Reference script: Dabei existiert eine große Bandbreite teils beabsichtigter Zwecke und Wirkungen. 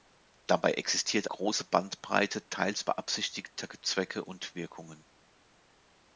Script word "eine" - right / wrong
wrong